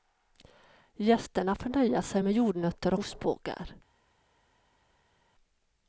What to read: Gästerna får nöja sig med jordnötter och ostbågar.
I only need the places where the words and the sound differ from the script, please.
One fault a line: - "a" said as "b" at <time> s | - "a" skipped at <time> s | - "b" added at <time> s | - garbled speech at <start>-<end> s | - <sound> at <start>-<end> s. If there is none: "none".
- "och" skipped at 2.9 s